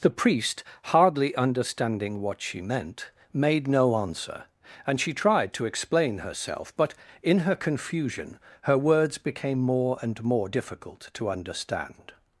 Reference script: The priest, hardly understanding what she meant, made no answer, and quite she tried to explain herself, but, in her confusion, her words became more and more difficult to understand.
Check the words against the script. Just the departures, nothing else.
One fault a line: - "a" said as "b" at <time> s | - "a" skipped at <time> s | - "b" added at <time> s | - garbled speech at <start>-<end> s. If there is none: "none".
- "quite" skipped at 5.0 s